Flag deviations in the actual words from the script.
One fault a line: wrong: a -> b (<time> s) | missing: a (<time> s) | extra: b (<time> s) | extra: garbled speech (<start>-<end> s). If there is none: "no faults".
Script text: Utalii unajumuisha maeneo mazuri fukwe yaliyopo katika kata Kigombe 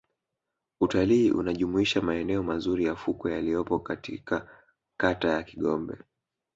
extra: ya (2.9 s)
extra: ya (5.3 s)